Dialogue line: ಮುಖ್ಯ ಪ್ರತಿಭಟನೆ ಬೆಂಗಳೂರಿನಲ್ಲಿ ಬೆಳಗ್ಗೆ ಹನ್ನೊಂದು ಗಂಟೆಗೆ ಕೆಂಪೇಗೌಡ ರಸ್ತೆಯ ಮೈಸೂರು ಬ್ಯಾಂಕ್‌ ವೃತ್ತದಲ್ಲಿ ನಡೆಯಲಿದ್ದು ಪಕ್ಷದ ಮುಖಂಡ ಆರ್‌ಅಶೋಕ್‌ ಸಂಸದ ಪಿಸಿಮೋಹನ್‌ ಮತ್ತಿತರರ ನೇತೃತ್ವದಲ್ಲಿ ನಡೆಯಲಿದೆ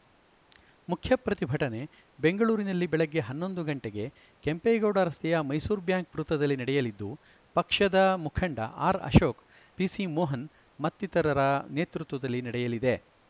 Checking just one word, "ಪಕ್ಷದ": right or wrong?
right